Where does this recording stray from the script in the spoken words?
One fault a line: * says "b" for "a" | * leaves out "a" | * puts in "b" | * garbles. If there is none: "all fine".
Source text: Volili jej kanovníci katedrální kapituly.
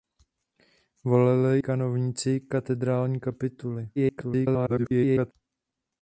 * leaves out "jej"
* garbles